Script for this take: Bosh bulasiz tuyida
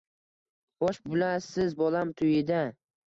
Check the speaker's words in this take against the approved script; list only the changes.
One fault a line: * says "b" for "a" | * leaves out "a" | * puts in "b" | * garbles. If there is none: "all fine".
* puts in "bolam"